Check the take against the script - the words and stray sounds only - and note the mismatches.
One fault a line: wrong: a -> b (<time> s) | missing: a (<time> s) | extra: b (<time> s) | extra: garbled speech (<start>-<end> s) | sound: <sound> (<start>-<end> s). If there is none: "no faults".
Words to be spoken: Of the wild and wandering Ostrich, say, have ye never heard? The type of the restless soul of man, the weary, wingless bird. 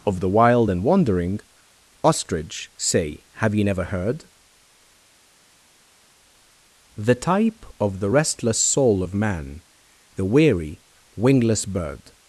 no faults